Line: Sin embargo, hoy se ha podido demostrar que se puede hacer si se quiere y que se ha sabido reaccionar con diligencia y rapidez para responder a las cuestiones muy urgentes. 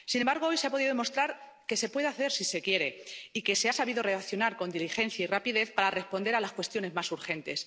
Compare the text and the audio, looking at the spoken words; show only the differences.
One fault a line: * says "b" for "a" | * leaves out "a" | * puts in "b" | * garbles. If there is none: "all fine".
* says "más" for "muy"